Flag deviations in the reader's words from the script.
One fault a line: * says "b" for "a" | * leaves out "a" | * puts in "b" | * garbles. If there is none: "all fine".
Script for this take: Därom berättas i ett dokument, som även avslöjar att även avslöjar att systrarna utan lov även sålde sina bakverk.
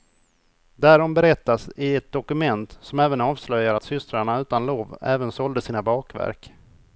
* leaves out "även avslöjar att"